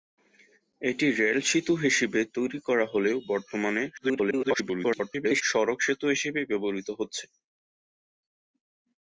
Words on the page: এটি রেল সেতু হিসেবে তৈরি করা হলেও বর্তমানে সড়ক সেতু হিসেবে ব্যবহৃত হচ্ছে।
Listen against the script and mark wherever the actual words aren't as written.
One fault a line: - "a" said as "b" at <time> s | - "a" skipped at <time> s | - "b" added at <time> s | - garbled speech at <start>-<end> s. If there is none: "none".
- garbled speech at 4.0-5.4 s